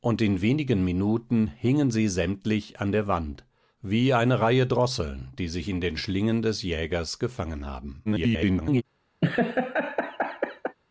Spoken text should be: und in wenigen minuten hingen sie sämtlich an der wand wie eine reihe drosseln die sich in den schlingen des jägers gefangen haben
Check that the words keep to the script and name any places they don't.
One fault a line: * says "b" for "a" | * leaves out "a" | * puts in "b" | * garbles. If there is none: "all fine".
* garbles